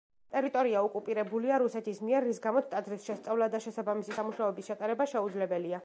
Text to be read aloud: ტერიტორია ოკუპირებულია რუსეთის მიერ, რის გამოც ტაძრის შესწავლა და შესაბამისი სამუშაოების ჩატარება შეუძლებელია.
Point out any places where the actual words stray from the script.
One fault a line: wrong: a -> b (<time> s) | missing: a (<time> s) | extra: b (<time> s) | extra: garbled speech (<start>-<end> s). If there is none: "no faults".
no faults